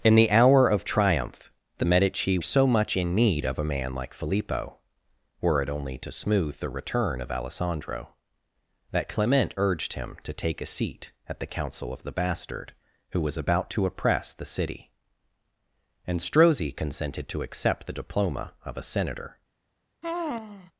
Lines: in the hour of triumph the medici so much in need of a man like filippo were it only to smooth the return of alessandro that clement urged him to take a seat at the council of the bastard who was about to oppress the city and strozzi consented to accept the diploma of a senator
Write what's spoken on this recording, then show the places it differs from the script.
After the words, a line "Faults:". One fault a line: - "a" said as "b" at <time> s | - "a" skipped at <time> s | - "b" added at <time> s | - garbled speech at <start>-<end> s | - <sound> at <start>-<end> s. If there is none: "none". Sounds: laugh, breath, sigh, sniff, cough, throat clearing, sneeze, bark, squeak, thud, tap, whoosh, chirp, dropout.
in the hour of triumph the medici so much in need of a man like filippo were it only to smooth the return of alessandro that clement urged him to take a seat at the council of the bastard who was about to oppress the city and strozzi consented to accept the diploma of a senator
Faults:
- sigh at 20.0-20.7 s